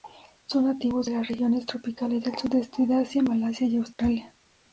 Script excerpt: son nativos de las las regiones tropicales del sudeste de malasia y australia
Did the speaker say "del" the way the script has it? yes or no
yes